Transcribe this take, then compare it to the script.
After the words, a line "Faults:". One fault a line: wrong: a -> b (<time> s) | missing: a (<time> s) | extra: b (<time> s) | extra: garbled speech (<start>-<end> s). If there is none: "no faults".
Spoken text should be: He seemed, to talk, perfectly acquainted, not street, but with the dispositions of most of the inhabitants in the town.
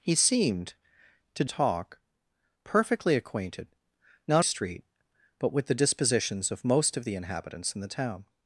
He seemed, to talk, perfectly acquainted, not street, but with the dispositions of most of the inhabitants in the town.
Faults:
no faults